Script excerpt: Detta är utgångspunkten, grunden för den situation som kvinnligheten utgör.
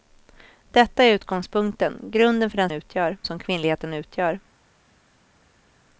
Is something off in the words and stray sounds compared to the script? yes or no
yes